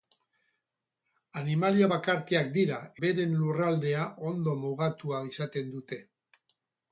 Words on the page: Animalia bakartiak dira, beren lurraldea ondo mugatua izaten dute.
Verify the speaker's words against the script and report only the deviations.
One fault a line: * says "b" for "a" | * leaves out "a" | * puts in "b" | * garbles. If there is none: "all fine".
all fine